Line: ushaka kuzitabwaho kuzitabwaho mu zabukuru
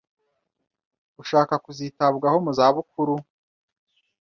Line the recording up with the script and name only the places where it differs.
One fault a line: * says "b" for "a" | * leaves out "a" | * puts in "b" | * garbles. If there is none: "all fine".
* leaves out "kuzitabwaho"